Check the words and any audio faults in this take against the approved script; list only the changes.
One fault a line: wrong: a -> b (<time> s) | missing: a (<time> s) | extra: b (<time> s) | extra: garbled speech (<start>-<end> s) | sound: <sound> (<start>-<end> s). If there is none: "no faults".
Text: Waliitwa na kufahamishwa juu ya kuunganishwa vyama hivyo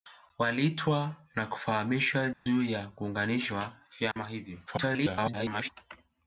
sound: dropout (2.3-2.5 s)
sound: dropout (4.1-4.2 s)
extra: garbled speech (4.7-5.7 s)